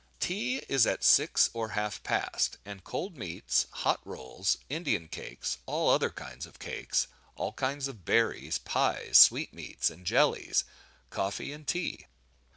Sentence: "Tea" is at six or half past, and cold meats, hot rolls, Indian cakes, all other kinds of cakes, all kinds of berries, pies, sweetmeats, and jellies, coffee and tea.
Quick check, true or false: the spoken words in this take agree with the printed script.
true